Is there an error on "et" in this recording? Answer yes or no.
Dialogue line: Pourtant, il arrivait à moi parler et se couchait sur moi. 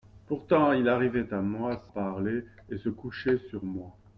no